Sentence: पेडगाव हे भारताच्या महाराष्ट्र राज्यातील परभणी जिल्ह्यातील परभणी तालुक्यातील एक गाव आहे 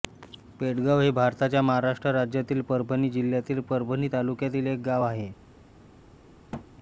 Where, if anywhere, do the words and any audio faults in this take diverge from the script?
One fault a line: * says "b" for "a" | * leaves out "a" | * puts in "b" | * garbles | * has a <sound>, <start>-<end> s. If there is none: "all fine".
* has a thud, 6.5-6.7 s